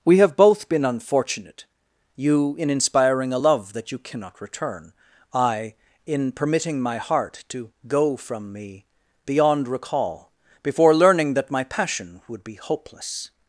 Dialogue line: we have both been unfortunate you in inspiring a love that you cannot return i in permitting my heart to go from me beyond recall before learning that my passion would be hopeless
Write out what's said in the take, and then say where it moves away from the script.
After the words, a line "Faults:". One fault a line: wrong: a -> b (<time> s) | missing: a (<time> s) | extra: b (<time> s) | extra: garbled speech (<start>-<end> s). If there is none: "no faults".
we have both been unfortunate you in inspiring a love that you cannot return i in permitting my heart to go from me beyond recall before learning that my passion would be hopeless
Faults:
no faults